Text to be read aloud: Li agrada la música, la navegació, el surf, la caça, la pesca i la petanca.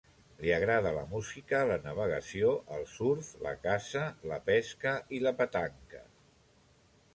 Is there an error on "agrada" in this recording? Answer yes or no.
no